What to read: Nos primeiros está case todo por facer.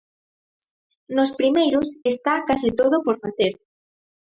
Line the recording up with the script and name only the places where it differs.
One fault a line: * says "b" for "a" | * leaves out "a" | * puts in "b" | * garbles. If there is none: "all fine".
all fine